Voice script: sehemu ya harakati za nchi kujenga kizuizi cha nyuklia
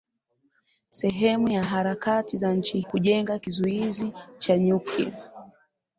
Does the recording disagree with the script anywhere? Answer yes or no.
no